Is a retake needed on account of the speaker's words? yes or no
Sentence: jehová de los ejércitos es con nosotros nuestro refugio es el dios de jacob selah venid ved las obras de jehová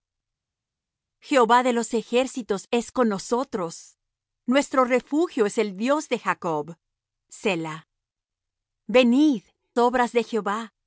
yes